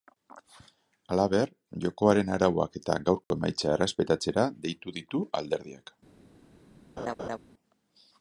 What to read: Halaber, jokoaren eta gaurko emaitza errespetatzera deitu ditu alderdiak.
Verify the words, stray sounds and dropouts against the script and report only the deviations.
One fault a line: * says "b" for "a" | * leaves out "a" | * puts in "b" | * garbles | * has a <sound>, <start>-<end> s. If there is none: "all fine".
* puts in "arauak"
* has a dropout, 3.2-3.3 s
* has a laugh, 7.0-7.4 s